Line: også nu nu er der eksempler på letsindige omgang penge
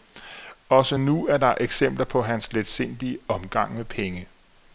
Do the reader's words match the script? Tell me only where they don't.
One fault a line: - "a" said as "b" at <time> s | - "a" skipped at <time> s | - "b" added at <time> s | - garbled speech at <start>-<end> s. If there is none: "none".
- "nu" skipped at 1.3 s
- "hans" added at 2.2 s
- "med" added at 3.7 s